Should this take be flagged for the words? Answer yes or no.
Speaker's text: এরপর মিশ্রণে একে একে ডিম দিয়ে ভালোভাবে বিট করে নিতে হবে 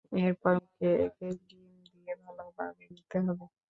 yes